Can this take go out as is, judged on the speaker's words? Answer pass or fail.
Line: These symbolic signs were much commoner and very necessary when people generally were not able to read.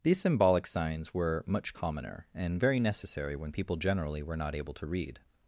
pass